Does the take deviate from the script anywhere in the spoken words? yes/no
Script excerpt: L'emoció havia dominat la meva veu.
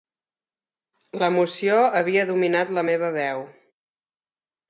no